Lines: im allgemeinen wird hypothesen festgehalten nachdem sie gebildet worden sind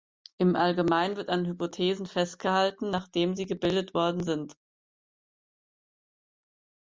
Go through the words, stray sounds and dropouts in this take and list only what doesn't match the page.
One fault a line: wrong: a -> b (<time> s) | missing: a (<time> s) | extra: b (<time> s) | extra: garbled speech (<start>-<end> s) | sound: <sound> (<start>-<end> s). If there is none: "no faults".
extra: an (1.3 s)